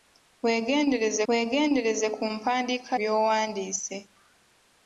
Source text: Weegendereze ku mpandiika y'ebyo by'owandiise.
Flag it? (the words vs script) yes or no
yes